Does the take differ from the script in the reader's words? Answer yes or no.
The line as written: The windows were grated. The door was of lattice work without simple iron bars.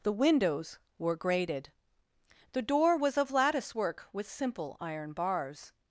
yes